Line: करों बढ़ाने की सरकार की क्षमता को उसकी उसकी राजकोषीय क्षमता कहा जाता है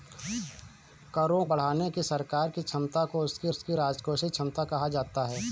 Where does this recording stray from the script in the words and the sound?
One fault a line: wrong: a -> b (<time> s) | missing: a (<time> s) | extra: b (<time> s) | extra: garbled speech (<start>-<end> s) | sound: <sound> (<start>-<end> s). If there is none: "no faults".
no faults